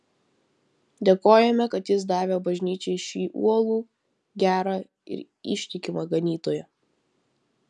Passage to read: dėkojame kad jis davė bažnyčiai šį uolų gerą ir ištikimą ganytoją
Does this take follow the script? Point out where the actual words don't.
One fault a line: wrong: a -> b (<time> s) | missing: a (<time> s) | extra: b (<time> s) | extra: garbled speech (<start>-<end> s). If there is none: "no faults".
no faults